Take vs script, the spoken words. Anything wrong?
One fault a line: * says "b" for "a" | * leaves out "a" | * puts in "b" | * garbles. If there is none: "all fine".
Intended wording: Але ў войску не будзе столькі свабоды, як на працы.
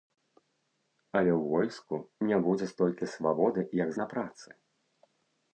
all fine